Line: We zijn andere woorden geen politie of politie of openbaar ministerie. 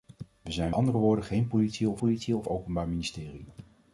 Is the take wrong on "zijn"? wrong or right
right